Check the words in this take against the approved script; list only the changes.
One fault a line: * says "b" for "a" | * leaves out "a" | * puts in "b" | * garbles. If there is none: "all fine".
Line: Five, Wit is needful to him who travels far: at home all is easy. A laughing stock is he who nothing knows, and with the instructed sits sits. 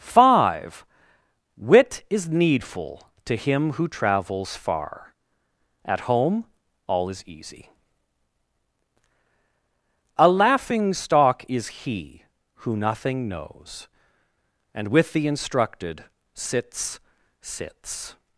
all fine